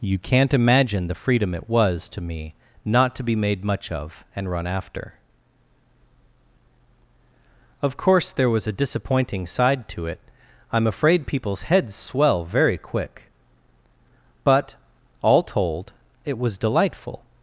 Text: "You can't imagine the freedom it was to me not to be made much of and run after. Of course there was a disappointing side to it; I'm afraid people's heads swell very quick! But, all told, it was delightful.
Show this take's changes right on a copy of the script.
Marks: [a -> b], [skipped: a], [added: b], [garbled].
"You can't imagine the freedom it was to me not to be made much of and run after. Of course there was a disappointing side to it; I'm afraid people's heads swell very quick! But, all told, it was delightful.